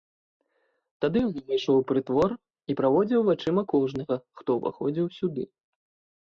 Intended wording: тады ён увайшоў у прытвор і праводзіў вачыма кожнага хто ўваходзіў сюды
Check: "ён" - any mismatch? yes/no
no